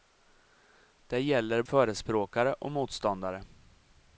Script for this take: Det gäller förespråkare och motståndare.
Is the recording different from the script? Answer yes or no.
no